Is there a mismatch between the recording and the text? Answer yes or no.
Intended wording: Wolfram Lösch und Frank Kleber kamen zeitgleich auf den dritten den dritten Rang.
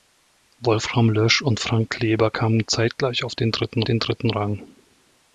no